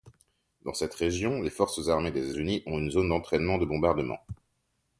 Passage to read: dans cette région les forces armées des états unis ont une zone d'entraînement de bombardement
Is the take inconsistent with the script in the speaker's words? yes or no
yes